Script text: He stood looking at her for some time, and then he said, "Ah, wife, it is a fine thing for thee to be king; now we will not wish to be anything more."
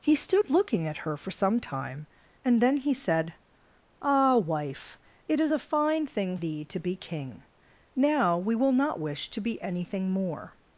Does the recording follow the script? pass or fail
fail